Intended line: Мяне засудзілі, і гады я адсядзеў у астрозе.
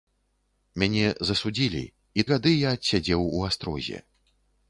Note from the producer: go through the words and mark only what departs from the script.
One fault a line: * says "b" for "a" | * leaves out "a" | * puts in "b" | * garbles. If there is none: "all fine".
all fine